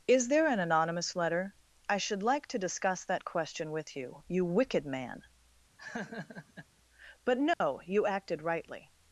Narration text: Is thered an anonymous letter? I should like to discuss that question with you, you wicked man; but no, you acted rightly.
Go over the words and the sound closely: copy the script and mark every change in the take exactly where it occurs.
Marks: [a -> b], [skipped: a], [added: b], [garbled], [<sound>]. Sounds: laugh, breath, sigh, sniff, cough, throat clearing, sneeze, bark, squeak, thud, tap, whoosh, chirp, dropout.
Is [thered -> there] an anonymous letter? I should like to discuss that question with you, you wicked man; [laugh] but no, [dropout] you acted rightly.